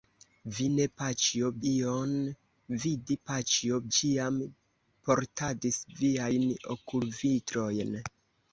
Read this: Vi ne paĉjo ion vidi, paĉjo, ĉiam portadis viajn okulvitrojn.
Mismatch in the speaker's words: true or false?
false